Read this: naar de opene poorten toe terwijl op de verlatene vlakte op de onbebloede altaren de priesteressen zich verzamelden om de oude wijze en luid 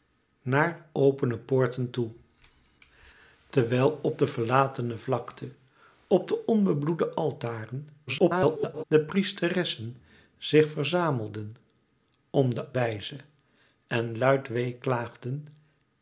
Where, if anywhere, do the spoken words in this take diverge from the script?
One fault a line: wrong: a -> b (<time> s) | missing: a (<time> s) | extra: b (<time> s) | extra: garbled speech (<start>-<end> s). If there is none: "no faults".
missing: de (0.9 s)
extra: garbled speech (8.1-8.8 s)
missing: oude (12.7 s)